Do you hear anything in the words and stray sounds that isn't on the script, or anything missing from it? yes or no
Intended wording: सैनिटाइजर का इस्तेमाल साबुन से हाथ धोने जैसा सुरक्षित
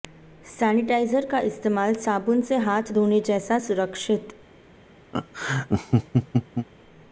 yes